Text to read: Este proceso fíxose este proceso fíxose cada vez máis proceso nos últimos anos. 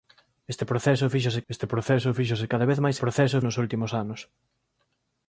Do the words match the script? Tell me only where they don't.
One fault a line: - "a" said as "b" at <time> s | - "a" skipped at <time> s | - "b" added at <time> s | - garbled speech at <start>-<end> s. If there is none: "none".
none